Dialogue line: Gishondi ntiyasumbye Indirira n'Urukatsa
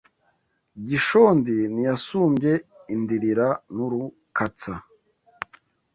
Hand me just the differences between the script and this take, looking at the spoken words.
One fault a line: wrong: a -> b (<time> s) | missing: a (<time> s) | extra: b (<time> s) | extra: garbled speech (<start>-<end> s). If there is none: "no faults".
no faults